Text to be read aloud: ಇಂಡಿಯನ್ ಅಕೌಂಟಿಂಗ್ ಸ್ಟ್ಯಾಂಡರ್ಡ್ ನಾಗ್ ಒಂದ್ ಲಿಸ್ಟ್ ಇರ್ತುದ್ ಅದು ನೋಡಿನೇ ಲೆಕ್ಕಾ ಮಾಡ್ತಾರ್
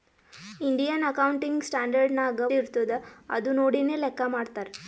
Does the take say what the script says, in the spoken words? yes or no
no